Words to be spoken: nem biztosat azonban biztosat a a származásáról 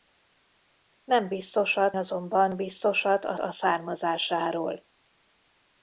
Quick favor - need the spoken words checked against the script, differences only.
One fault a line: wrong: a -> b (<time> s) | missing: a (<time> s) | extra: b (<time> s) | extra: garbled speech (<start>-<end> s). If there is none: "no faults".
no faults